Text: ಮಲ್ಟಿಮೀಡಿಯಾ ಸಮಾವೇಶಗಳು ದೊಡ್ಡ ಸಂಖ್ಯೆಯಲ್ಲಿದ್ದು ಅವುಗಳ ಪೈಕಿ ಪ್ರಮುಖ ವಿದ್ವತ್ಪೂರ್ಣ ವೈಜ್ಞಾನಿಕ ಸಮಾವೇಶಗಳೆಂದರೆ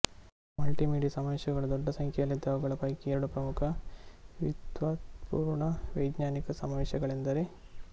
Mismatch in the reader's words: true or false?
true